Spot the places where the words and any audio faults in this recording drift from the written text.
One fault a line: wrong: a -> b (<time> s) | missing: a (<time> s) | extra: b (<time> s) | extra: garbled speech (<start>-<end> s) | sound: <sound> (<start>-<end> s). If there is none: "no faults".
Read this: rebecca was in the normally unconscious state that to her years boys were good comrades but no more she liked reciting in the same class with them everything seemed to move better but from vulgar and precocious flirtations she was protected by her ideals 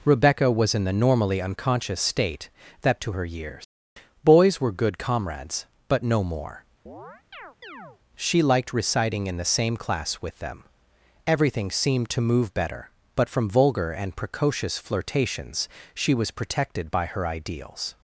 sound: chirp (6.9-8.0 s)